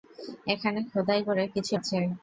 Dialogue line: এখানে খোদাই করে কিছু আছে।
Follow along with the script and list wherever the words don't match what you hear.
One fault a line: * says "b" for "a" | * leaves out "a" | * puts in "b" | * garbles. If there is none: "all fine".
all fine